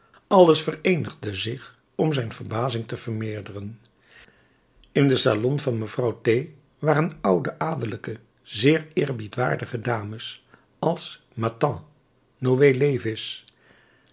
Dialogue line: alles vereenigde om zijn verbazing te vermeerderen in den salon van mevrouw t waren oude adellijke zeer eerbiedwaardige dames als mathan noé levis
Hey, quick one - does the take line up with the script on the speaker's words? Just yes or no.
no